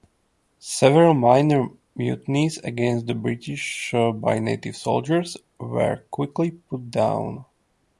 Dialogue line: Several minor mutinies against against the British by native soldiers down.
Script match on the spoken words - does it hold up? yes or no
no